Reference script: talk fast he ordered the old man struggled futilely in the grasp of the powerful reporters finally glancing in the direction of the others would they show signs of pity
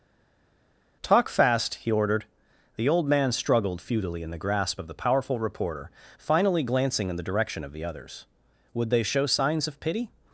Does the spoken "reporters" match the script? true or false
false